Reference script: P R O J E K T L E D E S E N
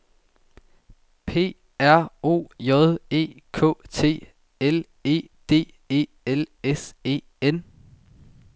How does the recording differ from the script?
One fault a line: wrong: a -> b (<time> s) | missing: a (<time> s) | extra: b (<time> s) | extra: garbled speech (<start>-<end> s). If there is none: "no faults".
extra: L (6.3 s)